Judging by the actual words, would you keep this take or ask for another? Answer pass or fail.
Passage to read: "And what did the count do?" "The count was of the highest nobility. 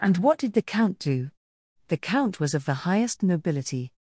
pass